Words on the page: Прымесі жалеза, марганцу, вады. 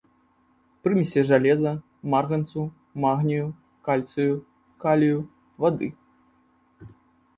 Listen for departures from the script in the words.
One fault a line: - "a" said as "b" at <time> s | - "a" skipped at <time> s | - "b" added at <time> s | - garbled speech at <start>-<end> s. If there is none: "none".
- "магнію кальцыю калію" added at 3.0 s